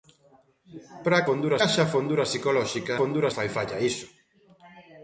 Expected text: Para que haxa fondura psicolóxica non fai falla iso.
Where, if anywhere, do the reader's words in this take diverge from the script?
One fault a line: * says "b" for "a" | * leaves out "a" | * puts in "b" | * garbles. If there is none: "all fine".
* says "fondura" for "que"
* says "fondura" for "non"